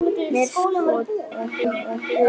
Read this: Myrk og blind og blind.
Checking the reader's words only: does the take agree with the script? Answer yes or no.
yes